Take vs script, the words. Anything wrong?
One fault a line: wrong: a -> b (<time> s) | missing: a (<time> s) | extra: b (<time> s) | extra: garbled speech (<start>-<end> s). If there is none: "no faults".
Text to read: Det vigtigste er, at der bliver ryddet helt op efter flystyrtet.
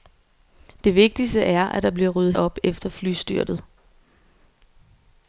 missing: helt (2.3 s)